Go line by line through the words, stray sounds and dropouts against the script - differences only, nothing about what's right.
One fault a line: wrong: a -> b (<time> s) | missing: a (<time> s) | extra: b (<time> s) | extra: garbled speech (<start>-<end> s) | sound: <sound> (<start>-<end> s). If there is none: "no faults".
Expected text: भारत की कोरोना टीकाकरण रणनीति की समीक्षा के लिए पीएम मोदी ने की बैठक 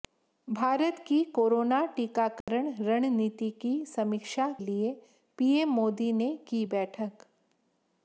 sound: dropout (2.4-2.5 s)
missing: के (4.5 s)